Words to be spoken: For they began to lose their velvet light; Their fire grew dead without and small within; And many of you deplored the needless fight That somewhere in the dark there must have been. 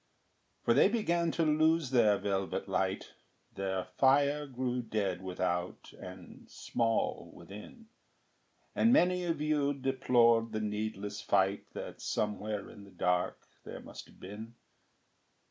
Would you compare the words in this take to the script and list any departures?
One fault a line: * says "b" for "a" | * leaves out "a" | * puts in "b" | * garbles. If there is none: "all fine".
all fine